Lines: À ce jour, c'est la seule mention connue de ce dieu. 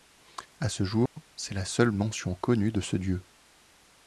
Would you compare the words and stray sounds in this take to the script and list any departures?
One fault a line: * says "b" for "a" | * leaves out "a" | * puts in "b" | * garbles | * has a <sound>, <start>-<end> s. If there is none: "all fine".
* has a dropout, 1.1-1.2 s